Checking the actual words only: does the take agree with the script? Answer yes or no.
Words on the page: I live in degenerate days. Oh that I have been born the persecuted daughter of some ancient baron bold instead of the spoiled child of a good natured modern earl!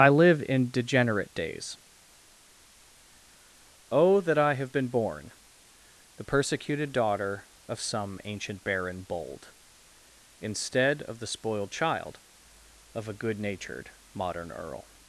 yes